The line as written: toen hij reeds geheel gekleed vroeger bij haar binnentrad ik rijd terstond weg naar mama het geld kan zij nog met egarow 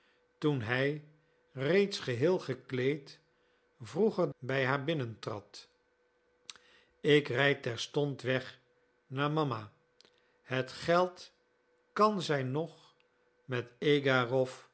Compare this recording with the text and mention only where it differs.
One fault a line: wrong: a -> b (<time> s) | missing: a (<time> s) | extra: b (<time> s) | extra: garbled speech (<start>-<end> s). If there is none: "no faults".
no faults